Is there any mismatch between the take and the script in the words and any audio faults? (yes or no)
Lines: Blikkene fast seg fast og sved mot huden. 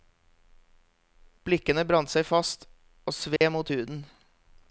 yes